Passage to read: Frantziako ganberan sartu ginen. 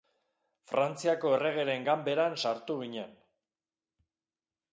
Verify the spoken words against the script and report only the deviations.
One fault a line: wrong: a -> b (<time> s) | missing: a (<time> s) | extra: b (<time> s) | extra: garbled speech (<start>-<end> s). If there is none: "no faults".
extra: erregeren (1.4 s)